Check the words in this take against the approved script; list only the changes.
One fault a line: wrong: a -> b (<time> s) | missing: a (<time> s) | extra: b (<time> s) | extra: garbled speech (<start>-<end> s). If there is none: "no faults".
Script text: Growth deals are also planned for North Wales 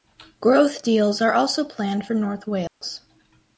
no faults